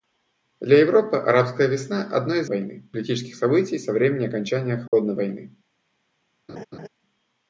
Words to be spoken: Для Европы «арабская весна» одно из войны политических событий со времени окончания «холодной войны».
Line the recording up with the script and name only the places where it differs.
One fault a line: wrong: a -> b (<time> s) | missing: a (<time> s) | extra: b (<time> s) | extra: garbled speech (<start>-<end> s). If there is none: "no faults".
no faults